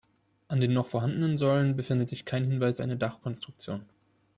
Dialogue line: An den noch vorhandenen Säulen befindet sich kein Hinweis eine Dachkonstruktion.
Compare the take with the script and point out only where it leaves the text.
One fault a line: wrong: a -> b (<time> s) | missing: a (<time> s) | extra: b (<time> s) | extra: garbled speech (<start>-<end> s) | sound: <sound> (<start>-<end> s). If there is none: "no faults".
no faults